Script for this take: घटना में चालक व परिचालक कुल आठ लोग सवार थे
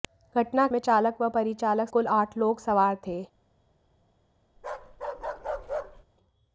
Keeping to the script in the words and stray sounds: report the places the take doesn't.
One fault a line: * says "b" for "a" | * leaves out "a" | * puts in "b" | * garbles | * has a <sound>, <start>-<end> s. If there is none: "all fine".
* has a bark, 4.6-6.0 s